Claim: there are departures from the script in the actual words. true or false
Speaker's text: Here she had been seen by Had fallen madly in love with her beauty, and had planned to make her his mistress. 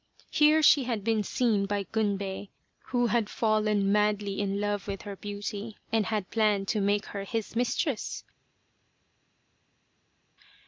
true